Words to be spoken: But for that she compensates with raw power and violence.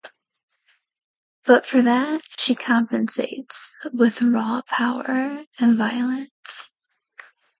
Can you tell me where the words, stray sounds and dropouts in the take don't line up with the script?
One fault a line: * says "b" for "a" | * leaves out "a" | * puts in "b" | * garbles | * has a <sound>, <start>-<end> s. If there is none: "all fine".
* has a dropout, 2.3-2.4 s